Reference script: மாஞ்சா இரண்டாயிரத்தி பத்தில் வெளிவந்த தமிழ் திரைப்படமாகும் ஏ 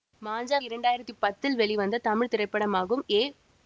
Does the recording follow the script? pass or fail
pass